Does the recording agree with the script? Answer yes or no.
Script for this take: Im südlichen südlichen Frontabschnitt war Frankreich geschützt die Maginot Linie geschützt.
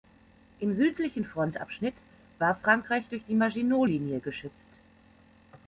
no